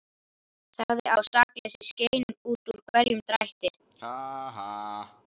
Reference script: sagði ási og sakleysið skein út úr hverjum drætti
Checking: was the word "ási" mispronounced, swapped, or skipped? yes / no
yes